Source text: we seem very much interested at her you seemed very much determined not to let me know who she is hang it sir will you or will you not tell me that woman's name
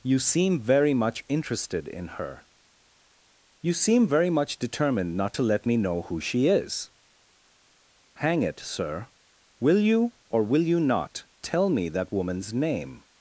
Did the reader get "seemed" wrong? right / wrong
wrong